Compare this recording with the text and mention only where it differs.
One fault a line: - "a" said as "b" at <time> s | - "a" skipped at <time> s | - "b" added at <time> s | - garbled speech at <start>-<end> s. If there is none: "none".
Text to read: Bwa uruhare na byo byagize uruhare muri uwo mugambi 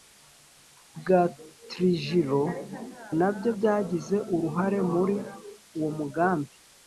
- "uruhare" said as "trujillo" at 1.7 s